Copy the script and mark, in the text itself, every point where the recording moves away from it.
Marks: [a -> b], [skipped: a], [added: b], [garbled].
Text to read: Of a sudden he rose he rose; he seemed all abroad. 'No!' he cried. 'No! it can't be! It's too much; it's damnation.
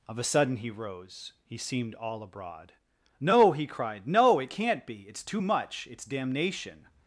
Of a sudden he rose he [skipped: rose; he] seemed all abroad. 'No!' he cried. 'No! it can't be! It's too much; it's damnation.